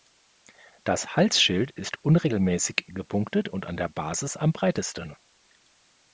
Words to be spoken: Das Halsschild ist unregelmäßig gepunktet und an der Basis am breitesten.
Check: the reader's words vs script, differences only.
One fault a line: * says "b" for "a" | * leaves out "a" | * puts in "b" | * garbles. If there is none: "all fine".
all fine